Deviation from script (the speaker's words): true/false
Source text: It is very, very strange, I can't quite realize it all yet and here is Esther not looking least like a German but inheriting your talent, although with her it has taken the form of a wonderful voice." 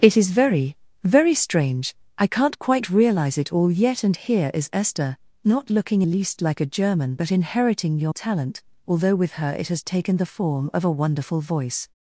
false